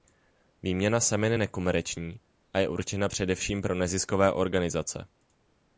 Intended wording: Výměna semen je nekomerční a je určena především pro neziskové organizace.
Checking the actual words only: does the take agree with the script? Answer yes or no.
yes